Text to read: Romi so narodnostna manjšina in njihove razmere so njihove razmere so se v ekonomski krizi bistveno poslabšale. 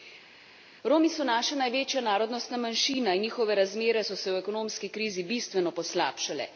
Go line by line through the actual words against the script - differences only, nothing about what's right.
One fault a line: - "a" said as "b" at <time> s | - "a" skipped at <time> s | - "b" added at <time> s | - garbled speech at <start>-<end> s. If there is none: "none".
- "naša največja" added at 1.3 s
- "njihove razmere so" skipped at 4.2 s